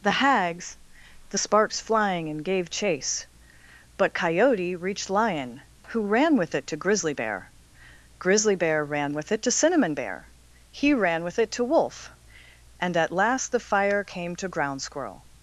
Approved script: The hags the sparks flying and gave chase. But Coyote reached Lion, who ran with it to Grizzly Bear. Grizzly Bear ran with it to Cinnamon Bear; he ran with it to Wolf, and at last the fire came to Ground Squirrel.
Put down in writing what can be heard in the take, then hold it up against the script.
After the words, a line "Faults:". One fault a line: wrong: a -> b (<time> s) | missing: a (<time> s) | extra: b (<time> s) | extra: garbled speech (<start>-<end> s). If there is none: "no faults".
The hags the sparks flying and gave chase. But Coyote reached Lion, who ran with it to Grizzly Bear. Grizzly Bear ran with it to Cinnamon Bear; he ran with it to Wolf, and at last the fire came to Ground Squirrel.
Faults:
no faults